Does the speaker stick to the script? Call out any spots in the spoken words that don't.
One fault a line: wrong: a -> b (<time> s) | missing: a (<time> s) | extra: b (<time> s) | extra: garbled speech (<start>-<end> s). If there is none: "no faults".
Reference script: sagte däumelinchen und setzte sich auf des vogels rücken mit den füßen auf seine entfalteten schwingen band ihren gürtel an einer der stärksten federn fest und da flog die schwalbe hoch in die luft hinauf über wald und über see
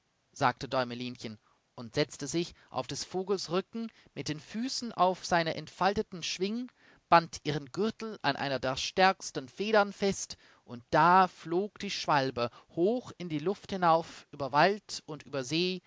no faults